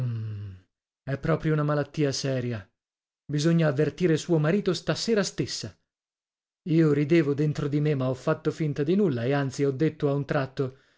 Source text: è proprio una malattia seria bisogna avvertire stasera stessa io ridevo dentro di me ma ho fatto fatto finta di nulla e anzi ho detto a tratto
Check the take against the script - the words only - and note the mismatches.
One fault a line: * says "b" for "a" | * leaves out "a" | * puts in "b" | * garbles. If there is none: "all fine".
* puts in "suo marito"
* leaves out "fatto"
* puts in "un"